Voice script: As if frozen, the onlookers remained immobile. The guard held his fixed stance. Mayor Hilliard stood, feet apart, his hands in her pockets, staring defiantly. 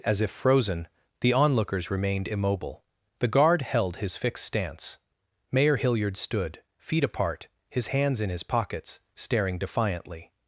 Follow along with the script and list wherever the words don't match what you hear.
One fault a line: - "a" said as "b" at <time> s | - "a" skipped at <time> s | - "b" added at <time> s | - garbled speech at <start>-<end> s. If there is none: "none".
- "her" said as "his" at 8.3 s